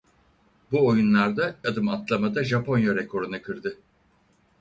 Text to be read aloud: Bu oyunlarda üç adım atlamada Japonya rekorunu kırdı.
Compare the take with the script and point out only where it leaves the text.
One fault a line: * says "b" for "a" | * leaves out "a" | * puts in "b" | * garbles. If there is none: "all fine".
* leaves out "üç"